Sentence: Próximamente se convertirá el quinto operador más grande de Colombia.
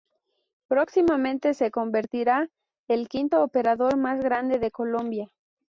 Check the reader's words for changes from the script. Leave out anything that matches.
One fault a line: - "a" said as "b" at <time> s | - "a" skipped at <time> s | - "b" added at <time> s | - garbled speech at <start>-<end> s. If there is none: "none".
none